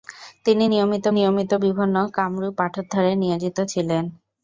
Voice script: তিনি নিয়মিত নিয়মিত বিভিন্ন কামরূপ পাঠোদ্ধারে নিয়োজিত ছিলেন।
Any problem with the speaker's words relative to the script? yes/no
no